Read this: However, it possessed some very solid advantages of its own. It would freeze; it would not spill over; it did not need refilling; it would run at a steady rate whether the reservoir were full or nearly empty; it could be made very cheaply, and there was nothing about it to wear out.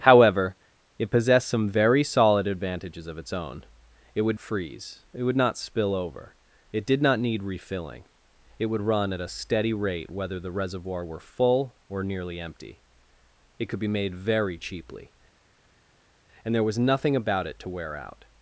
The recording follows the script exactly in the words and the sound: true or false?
true